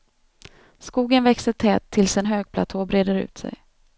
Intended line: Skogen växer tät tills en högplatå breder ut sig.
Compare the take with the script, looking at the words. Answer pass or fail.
pass